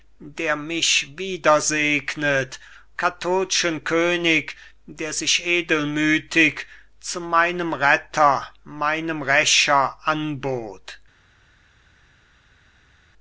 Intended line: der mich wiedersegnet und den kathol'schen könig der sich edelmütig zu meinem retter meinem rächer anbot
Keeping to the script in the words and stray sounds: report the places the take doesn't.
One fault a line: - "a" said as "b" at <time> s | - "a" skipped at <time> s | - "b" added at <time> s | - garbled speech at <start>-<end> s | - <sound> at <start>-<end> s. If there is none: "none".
- "und den" skipped at 2.6 s